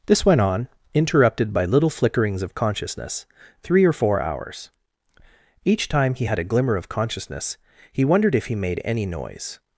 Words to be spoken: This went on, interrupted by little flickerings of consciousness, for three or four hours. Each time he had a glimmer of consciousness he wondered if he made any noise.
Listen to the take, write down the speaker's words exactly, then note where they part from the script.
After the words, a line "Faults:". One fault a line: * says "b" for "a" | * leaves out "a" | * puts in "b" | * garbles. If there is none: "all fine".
This went on, interrupted by little flickerings of consciousness, three or four hours. Each time he had a glimmer of consciousness he wondered if he made any noise.
Faults:
* leaves out "for"